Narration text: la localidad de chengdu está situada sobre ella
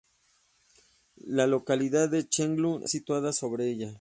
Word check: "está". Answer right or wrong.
wrong